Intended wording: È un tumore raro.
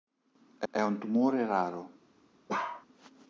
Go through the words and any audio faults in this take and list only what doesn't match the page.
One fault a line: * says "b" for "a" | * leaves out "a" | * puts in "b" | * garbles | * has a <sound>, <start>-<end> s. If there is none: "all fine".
* puts in "è"
* has a bark, 2.5-2.9 s